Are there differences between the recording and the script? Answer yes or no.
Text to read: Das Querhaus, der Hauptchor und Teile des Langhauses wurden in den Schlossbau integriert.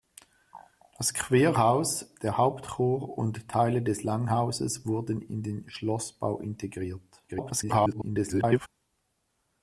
yes